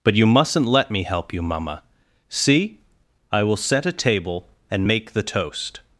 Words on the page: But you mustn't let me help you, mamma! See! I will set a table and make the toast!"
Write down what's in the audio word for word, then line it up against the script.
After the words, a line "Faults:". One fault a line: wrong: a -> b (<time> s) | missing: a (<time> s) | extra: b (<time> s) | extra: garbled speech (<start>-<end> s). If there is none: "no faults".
But you mustn't let me help you, mamma! See! I will set a table and make the toast!"
Faults:
no faults